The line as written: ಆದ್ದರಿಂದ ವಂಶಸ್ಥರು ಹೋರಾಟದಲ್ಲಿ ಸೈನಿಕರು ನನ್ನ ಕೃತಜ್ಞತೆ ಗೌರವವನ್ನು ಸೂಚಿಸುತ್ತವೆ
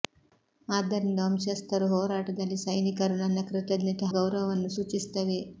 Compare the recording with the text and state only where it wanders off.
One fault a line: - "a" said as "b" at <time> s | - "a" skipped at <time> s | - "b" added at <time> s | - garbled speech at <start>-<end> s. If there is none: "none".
none